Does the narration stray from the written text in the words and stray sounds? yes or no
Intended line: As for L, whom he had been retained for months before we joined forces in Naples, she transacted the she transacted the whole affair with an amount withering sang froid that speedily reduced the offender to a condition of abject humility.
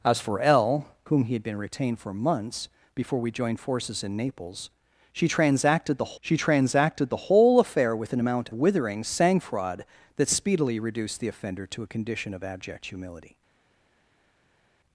no